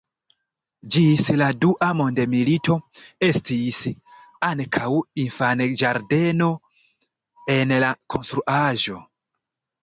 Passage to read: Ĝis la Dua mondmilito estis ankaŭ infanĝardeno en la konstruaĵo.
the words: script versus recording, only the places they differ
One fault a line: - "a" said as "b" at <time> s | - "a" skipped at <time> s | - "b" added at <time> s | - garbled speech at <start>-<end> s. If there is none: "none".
none